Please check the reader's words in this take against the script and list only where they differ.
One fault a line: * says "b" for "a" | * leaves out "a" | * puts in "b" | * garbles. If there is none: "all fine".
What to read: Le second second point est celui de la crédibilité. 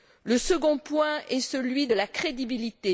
* leaves out "second"